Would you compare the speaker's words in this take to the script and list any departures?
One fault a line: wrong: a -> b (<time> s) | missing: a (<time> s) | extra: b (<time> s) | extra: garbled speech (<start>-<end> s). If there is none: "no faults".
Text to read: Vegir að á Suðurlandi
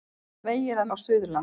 no faults